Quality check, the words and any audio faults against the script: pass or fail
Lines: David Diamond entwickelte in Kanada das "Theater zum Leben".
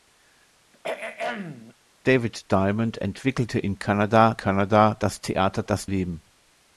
fail